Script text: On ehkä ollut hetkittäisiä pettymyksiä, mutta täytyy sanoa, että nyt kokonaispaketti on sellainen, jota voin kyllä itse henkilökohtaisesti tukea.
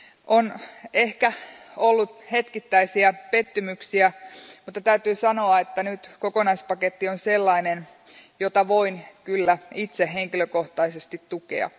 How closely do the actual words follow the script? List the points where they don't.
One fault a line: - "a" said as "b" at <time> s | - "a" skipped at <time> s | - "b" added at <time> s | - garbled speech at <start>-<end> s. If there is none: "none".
none